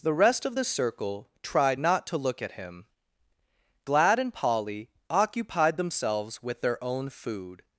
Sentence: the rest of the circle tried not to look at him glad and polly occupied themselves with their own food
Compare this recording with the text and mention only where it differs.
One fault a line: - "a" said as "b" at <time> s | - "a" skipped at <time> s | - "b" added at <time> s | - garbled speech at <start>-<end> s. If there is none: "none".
none